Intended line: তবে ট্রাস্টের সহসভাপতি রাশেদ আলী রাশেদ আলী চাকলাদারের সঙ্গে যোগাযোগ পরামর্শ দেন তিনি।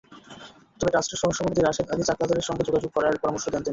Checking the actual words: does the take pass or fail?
fail